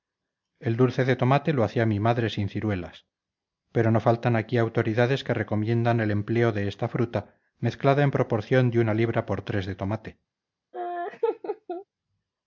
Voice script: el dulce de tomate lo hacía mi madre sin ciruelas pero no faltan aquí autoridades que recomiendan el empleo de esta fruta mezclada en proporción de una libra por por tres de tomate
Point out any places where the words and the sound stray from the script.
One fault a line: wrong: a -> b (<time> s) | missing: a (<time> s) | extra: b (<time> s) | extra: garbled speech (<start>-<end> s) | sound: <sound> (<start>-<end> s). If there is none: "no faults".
missing: por (9.4 s)
sound: laugh (10.7-11.8 s)